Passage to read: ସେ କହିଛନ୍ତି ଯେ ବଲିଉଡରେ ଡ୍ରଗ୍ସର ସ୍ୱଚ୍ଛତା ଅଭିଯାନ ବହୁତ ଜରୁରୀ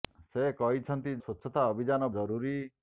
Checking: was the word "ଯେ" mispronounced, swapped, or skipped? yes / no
yes